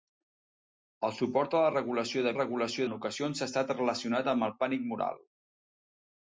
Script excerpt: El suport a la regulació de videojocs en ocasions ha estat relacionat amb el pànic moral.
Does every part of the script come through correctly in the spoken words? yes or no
no